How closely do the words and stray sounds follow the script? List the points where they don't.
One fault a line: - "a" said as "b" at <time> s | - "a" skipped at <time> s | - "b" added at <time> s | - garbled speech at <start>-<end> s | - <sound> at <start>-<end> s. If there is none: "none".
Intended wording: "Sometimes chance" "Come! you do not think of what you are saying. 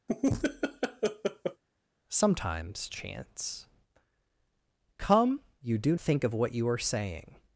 - laugh at 0.1-1.6 s
- "not" skipped at 6.0 s